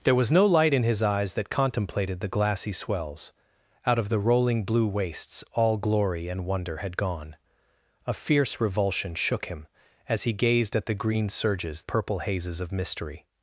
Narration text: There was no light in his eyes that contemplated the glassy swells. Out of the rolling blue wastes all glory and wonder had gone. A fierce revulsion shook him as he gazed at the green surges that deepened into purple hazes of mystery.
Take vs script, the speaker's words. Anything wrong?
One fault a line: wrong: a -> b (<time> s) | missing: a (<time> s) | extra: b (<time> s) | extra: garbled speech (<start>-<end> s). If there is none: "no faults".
missing: that deepened into (11.8 s)